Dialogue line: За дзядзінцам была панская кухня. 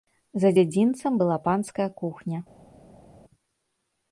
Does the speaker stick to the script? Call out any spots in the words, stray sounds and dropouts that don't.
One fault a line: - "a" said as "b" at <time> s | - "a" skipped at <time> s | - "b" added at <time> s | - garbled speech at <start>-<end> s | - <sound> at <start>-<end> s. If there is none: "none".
none